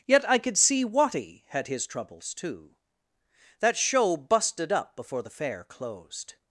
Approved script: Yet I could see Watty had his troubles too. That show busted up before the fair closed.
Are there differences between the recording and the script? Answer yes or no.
no